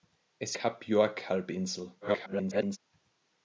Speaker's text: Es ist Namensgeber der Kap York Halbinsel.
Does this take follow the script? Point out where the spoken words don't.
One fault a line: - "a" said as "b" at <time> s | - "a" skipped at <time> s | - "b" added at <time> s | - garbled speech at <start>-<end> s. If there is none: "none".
- "ist Namensgeber der" skipped at 0.6 s
- garbled speech at 2.0-2.8 s